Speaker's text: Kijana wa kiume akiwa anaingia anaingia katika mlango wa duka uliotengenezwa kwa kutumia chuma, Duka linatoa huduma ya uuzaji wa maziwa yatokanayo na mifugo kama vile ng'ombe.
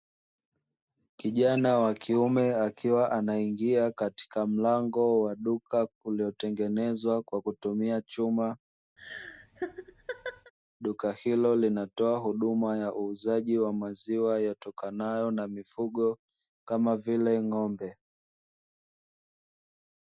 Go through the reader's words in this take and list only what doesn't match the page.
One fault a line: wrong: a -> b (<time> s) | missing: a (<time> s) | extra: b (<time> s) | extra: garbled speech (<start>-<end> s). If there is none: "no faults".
missing: anaingia (3.9 s)
extra: hilo (11.1 s)